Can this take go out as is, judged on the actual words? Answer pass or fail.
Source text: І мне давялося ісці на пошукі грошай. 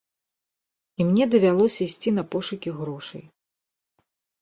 pass